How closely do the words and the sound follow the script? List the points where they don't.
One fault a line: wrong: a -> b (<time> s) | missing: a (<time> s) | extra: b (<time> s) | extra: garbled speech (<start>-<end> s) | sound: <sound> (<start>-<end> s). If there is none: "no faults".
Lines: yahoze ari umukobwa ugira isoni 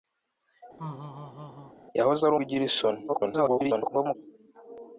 sound: laugh (0.8-1.7 s)
missing: umukobwa (2.3 s)
extra: garbled speech (3.1-4.2 s)